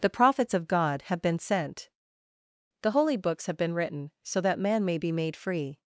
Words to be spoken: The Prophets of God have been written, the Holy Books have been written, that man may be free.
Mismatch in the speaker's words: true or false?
true